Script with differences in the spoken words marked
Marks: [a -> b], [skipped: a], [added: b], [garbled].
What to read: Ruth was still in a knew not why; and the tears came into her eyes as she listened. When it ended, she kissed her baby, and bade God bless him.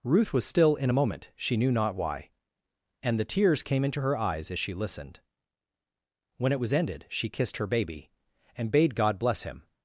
Ruth was still in a [added: moment she] knew not why; and the tears came into her eyes as she listened. When it [added: was] ended, she kissed her baby, and bade God bless him.